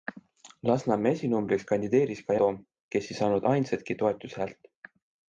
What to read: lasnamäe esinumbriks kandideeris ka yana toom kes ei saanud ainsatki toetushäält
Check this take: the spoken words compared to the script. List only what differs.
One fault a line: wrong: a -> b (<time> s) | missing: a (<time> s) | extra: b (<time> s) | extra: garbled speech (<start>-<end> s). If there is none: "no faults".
missing: yana (2.4 s)